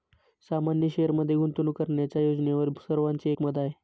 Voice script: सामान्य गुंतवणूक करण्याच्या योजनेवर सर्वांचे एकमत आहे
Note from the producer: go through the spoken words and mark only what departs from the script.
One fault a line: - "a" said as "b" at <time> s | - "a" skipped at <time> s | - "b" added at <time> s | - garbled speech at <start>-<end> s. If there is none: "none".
- "शेअरमध्ये" added at 0.9 s